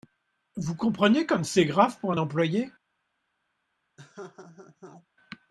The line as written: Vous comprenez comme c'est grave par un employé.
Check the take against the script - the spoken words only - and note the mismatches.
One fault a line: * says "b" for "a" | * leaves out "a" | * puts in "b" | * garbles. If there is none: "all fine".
* says "pour" for "par"